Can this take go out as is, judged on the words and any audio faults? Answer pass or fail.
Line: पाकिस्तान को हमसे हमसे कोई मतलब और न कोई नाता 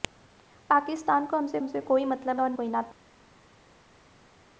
pass